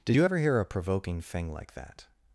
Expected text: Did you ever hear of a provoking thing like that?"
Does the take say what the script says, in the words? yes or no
no